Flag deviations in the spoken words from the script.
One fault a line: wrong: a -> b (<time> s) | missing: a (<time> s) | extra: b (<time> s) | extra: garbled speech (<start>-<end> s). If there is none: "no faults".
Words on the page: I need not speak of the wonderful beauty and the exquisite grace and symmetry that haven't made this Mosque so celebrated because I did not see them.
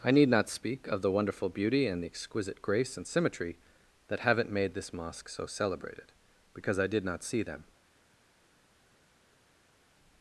no faults